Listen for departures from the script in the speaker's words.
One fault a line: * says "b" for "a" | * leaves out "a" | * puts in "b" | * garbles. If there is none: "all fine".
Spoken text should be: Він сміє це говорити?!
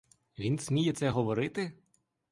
all fine